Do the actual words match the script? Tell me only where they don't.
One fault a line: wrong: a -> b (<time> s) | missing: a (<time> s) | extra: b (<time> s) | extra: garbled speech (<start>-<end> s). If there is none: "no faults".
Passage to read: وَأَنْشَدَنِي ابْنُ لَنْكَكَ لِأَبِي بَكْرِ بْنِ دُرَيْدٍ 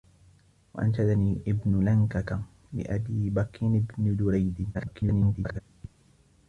extra: garbled speech (4.7-5.6 s)